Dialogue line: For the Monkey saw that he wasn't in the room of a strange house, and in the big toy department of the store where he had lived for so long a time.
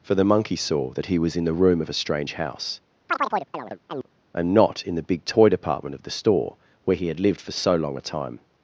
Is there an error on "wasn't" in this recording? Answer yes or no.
yes